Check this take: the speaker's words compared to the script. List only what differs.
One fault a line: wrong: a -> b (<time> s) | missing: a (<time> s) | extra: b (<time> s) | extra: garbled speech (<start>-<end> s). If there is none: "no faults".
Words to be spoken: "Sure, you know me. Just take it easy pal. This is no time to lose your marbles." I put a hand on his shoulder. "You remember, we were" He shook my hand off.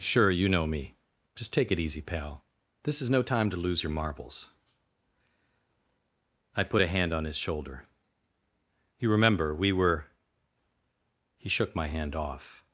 no faults